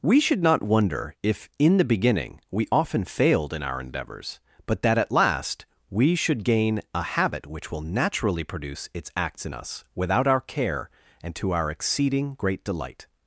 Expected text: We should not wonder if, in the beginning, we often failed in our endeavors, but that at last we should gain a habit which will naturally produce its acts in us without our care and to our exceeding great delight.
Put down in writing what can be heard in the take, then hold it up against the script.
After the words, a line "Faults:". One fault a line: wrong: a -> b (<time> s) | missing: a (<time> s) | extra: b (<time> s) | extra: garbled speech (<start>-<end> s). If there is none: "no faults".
We should not wonder if, in the beginning, we often failed in our endeavors, but that at last we should gain a habit which will naturally produce its acts in us without our care and to our exceeding great delight.
Faults:
no faults